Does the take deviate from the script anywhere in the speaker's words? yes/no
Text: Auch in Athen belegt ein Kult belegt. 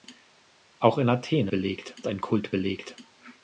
no